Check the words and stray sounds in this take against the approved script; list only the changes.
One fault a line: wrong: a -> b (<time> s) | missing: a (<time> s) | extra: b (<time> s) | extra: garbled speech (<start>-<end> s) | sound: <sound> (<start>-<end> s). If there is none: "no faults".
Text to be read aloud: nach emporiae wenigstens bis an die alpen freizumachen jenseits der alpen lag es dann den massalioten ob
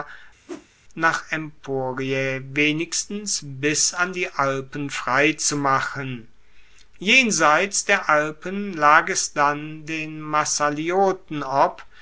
sound: whoosh (0.5-0.7 s)